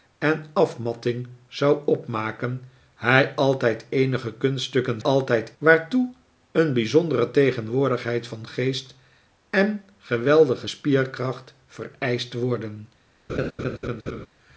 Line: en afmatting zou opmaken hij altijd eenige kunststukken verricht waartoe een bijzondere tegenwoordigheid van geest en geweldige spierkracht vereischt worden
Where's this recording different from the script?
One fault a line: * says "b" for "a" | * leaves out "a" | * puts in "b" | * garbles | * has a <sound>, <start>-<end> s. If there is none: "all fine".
* says "altijd" for "verricht"
* has a laugh, 13.3-14.3 s